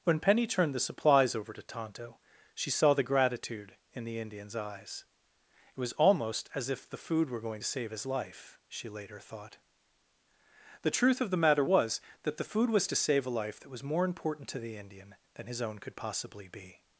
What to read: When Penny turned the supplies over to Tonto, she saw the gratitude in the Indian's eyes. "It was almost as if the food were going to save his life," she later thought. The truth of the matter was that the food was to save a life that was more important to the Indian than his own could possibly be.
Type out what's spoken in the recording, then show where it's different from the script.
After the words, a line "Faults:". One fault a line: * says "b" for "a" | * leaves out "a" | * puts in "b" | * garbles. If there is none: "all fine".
When Penny turned the supplies over to Tonto, she saw the gratitude in the Indian's eyes. "It was almost as if the food were going to save his life," she later thought. The truth of the matter was that the food was to save a life that was more important to the Indian than his own could possibly be.
Faults:
all fine